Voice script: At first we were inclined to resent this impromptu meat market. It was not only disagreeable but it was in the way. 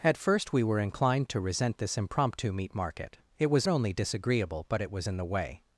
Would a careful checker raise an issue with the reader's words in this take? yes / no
yes